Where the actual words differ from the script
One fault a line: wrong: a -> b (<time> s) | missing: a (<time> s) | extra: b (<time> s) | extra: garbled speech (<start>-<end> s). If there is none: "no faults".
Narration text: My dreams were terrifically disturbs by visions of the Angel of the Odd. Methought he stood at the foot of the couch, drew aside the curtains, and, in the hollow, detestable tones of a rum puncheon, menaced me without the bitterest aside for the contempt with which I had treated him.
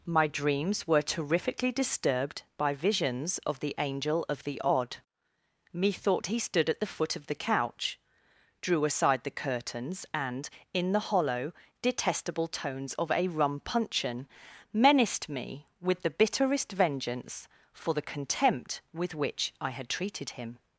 wrong: disturbs -> disturbed (1.7 s)
wrong: without -> with (15.8 s)
wrong: aside -> vengeance (16.7 s)